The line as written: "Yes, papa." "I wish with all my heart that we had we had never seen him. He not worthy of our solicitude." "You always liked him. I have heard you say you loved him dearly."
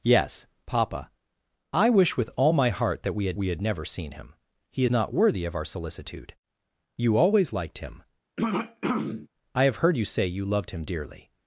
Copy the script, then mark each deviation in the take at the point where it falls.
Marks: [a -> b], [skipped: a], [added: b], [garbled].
"Yes, papa." "I wish with all my heart that we had we had never seen him. He not worthy of our solicitude." "You always liked him. I have heard you say you loved him dearly."